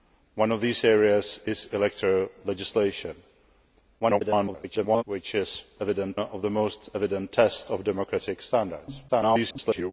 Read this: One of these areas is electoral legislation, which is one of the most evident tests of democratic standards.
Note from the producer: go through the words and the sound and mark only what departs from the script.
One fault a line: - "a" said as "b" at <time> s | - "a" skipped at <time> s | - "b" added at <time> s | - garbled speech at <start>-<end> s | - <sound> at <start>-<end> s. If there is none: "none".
- garbled speech at 4.0-5.0 s
- "one" said as "evident" at 5.8 s
- garbled speech at 9.1-9.9 s